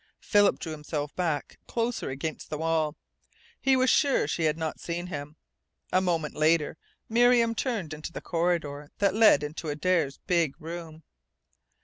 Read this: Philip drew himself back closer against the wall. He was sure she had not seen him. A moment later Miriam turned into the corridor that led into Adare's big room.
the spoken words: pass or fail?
pass